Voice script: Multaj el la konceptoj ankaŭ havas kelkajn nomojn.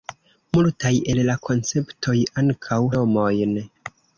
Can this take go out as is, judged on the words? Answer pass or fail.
fail